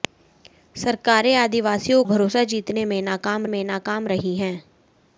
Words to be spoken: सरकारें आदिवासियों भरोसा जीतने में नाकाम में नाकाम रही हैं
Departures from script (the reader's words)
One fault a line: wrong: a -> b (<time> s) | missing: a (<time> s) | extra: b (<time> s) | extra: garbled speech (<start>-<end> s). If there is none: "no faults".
no faults